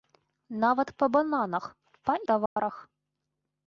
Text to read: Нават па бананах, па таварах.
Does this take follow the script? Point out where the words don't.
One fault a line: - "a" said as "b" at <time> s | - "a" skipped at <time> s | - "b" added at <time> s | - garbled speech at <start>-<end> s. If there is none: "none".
none